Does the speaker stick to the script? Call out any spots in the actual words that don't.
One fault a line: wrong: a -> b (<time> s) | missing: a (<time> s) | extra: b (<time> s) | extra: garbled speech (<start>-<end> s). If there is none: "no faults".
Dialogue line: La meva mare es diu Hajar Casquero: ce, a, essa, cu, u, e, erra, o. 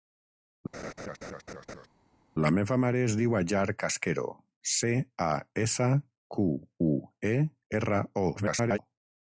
extra: garbled speech (8.4-8.8 s)